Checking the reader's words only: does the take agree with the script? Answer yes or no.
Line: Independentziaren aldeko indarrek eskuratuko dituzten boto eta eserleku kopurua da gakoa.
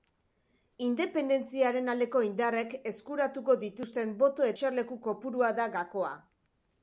no